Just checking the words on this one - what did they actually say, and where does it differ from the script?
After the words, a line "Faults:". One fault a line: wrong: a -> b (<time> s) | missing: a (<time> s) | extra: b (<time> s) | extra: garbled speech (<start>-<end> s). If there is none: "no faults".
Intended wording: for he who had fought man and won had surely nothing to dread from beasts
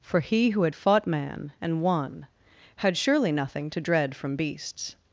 for he who had fought man and won had surely nothing to dread from beasts
Faults:
no faults